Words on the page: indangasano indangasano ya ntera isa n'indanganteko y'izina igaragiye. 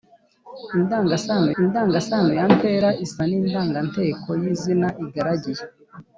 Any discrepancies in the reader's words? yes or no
no